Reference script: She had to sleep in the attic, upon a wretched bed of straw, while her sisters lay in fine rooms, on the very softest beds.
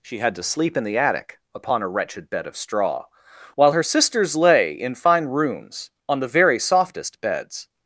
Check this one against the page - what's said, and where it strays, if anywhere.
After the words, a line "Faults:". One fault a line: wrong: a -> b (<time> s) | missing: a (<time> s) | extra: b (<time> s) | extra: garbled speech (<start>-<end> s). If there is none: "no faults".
She had to sleep in the attic, upon a wretched bed of straw, while her sisters lay in fine rooms, on the very softest beds.
Faults:
no faults